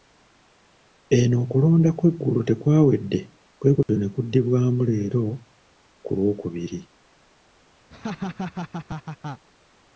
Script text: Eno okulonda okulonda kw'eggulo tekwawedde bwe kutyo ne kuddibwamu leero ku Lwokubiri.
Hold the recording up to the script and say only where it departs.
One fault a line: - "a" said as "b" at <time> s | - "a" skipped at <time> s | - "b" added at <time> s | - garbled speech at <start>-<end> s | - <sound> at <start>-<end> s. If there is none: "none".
- "okulonda" skipped at 1.9 s
- dropout at 3.8-3.9 s
- laugh at 7.9-9.5 s